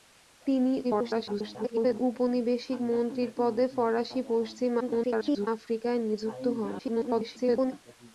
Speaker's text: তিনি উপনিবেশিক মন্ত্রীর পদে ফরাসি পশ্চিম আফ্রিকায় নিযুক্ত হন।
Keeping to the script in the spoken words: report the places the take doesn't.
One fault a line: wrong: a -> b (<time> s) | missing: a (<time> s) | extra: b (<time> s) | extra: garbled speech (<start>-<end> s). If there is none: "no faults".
extra: garbled speech (0.8-2.0 s)
extra: garbled speech (4.8-5.5 s)
extra: garbled speech (6.8-7.7 s)